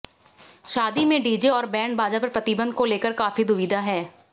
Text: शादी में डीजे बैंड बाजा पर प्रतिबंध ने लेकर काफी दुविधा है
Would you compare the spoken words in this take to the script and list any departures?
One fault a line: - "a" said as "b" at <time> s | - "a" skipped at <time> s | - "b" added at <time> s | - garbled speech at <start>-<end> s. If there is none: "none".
- "और" added at 1.5 s
- "ने" said as "को" at 2.7 s